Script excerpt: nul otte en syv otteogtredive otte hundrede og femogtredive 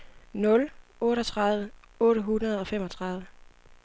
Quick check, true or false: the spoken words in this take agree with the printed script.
false